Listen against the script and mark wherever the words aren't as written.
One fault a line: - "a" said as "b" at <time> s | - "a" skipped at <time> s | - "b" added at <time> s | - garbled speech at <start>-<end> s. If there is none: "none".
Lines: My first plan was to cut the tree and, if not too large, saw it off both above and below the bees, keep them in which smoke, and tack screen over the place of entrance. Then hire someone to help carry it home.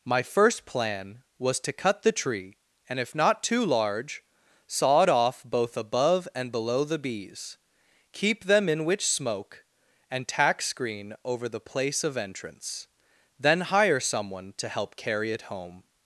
none